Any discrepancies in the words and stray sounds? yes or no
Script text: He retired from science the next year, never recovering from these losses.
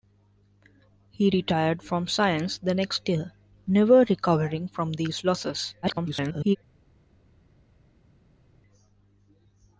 yes